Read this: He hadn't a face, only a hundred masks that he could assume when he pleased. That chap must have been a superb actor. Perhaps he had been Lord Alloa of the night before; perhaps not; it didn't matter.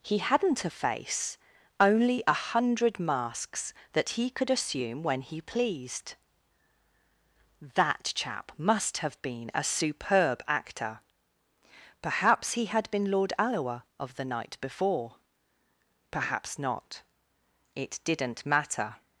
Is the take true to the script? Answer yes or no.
yes